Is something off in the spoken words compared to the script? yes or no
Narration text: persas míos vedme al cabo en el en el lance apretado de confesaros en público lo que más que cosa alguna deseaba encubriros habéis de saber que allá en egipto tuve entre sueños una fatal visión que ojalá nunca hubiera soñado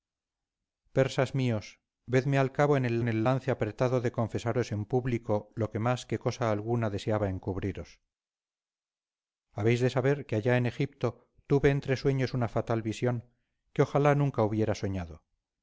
no